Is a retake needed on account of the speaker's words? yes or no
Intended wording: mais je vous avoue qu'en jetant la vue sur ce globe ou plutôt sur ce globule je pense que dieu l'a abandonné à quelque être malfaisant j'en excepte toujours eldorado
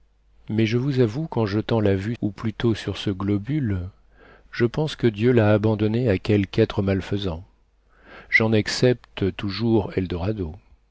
yes